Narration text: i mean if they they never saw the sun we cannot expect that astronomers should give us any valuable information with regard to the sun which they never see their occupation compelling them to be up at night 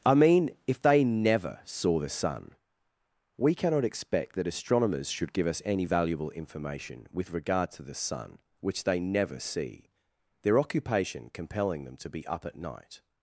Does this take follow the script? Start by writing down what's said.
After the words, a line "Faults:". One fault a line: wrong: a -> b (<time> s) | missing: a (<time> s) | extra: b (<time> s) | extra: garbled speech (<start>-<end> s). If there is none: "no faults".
i mean if they never saw the sun we cannot expect that astronomers should give us any valuable information with regard to the sun which they never see their occupation compelling them to be up at night
Faults:
missing: they (1.0 s)